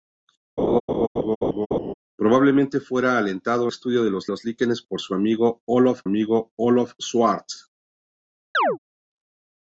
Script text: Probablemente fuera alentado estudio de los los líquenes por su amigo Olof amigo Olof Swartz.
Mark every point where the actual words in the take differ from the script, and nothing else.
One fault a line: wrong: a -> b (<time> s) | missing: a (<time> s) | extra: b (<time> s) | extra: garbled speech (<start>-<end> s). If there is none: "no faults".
no faults